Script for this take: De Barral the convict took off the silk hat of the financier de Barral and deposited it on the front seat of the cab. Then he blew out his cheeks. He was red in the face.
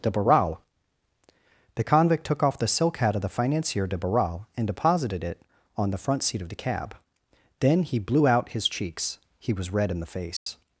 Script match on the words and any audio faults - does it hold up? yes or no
no